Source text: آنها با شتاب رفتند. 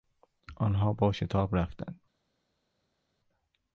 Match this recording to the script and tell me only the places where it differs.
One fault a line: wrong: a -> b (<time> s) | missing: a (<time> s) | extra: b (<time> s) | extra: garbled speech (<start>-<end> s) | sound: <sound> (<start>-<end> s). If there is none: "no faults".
no faults